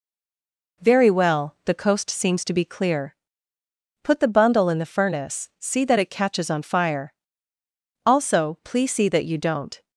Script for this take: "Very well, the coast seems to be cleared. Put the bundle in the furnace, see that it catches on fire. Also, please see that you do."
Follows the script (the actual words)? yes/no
no